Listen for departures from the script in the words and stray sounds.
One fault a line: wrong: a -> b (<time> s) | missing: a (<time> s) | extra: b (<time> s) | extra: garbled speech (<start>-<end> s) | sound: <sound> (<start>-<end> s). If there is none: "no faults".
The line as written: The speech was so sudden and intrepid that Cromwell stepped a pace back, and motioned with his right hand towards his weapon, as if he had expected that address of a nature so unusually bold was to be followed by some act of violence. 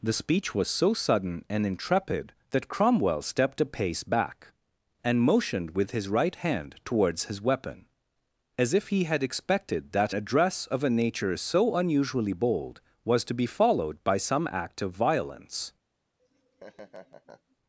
sound: laugh (16.2-17.6 s)